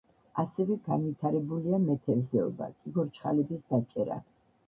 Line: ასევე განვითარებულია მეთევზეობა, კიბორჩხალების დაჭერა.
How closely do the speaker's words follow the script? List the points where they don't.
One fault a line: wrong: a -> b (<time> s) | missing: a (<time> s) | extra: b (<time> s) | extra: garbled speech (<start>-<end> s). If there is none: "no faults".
no faults